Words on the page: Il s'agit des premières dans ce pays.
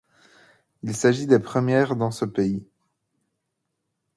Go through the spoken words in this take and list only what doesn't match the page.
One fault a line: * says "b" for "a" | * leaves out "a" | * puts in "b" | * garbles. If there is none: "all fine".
all fine